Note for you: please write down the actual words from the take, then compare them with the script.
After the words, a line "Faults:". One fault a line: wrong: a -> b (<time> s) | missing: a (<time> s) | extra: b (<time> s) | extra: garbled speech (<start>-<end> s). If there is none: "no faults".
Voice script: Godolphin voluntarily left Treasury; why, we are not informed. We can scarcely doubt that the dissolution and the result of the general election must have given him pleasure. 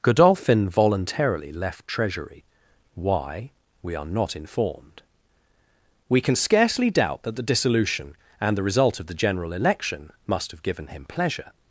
Godolphin voluntarily left Treasury; why, we are not informed. We can scarcely doubt that the dissolution and the result of the general election must have given him pleasure.
Faults:
no faults